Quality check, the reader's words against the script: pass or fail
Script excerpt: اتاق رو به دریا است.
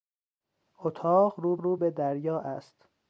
fail